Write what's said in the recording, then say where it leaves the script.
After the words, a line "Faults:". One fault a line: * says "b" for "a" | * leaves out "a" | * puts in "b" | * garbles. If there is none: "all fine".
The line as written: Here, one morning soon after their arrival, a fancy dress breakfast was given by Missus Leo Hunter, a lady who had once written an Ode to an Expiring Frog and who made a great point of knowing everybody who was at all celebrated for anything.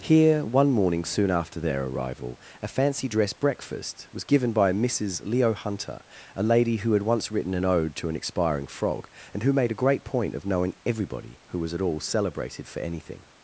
Here, one morning soon after their arrival, a fancy dress breakfast was given by Missus Leo Hunter, a lady who had once written an Ode to an Expiring Frog and who made a great point of knowing everybody who was at all celebrated for anything.
Faults:
all fine